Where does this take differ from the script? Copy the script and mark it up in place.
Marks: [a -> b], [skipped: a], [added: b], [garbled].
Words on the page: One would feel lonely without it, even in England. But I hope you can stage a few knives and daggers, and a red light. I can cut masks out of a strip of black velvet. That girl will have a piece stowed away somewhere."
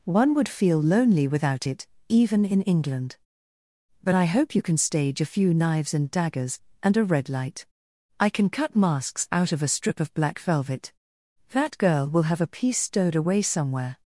One would feel lonely without it, even in England. But I hope you can stage a few knives and daggers, and a red light. I can cut masks out of a strip of black velvet. That girl will have a piece stowed away somewhere."